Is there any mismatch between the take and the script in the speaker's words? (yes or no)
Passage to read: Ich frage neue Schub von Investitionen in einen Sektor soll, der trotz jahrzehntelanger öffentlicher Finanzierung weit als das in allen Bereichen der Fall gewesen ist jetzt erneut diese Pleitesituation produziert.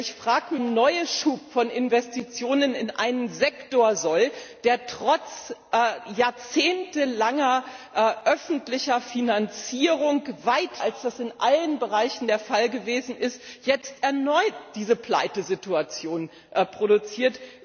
no